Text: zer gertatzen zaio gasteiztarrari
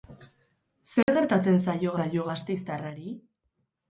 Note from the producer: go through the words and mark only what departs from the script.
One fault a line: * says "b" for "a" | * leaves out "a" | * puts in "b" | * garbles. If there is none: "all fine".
* puts in "zaio"